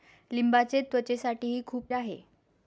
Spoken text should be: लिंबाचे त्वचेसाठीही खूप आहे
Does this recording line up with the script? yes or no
yes